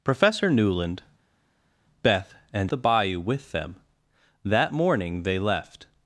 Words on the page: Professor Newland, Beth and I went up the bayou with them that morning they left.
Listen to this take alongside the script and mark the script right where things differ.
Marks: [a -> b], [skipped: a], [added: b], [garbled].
Professor Newland, Beth and [skipped: I went up] the bayou with them that morning they left.